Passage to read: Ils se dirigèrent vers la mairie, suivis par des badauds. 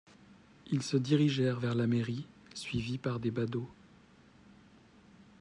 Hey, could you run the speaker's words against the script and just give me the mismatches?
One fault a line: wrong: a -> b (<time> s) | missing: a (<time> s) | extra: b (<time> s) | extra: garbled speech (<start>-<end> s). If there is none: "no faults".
no faults